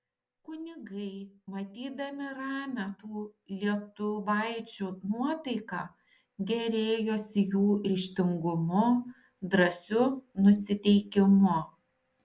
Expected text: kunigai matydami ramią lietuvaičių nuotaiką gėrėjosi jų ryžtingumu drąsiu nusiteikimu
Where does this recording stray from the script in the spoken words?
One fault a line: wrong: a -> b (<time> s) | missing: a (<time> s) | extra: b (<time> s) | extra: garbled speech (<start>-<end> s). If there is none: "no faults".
extra: tų (3.0 s)